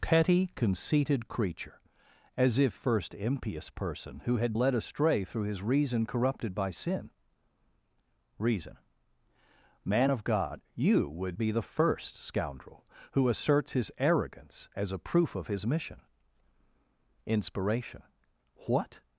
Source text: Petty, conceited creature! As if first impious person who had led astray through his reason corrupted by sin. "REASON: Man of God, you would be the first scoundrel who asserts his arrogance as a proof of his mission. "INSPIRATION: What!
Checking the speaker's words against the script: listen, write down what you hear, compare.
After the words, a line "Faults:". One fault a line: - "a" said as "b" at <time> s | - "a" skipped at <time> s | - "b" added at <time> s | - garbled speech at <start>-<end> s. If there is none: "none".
Petty, conceited creature! As if first impious person who had led astray through his reason corrupted by sin. "REASON: Man of God, you would be the first scoundrel who asserts his arrogance as a proof of his mission. "INSPIRATION: What!
Faults:
none